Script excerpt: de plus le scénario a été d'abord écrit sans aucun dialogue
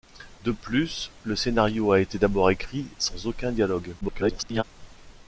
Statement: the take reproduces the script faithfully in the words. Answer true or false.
false